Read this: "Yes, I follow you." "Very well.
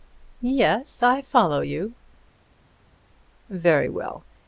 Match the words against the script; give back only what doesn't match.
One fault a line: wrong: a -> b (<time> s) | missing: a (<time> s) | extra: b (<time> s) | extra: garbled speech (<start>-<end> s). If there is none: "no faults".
no faults